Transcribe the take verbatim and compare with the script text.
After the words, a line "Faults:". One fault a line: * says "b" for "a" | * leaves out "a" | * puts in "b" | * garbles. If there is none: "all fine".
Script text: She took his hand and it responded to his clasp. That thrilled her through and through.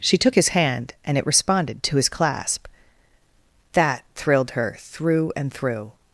She took his hand and it responded to his clasp. That thrilled her through and through.
Faults:
all fine